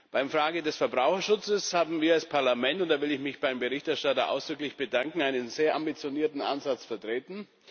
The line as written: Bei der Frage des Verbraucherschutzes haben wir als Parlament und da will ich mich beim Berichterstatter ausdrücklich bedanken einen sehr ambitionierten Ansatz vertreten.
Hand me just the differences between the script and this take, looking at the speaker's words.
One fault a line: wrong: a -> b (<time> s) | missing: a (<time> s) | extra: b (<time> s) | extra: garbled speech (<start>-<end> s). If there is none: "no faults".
no faults